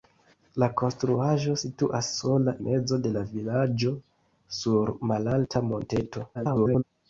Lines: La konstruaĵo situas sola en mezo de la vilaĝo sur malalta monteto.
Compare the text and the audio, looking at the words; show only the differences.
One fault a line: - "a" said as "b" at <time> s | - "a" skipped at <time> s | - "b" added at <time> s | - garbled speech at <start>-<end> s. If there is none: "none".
- "en" skipped at 2.5 s
- garbled speech at 6.3-6.8 s